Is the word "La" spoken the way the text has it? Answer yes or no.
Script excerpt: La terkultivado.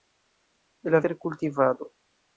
yes